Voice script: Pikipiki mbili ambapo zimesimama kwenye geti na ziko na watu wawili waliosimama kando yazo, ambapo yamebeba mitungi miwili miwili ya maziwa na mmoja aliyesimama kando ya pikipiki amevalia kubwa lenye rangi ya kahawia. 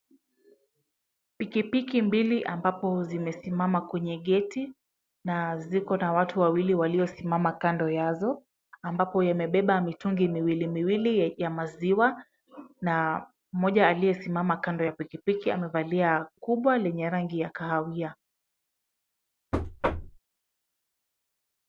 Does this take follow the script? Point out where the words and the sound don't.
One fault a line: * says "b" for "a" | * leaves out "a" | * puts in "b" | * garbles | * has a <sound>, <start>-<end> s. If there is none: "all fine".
* has a thud, 19.5-20.2 s